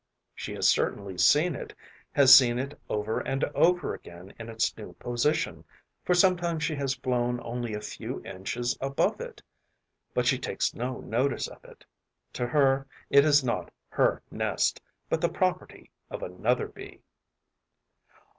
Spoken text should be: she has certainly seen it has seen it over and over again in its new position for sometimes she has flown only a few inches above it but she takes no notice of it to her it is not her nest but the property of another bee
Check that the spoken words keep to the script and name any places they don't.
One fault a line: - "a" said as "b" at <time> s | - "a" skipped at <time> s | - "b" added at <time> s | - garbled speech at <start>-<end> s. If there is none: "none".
none